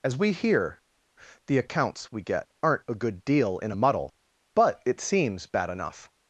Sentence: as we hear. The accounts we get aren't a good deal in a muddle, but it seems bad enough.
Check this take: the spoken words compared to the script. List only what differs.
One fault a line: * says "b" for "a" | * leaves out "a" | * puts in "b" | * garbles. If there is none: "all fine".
all fine